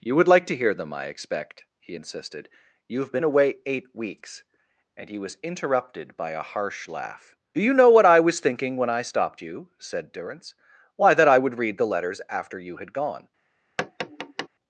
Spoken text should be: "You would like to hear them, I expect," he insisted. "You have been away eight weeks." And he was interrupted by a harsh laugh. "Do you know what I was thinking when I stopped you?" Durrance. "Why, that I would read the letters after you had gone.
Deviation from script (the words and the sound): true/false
true